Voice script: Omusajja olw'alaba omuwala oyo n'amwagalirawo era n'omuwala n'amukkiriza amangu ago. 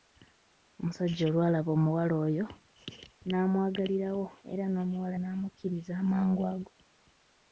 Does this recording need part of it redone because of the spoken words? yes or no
no